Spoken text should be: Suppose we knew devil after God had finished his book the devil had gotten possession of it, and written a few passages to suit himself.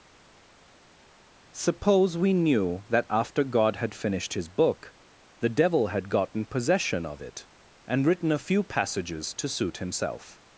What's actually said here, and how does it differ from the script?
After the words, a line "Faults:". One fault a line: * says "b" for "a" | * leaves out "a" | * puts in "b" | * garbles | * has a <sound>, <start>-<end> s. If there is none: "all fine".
Suppose we knew that after God had finished his book the devil had gotten possession of it, and written a few passages to suit himself.
Faults:
* says "that" for "devil"